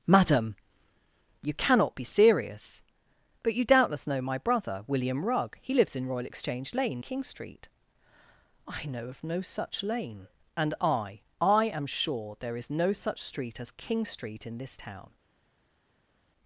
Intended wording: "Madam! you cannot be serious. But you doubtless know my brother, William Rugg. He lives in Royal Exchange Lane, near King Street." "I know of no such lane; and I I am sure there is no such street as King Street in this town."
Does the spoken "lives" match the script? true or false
true